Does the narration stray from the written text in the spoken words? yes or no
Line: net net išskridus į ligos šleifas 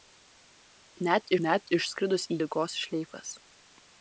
no